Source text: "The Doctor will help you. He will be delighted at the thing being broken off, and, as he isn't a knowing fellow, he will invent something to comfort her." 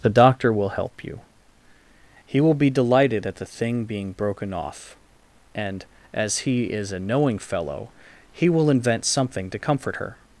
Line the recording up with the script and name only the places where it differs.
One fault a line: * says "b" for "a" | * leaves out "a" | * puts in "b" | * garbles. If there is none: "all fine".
* says "is" for "isn't"